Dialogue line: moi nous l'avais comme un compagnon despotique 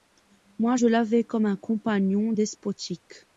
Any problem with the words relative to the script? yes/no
yes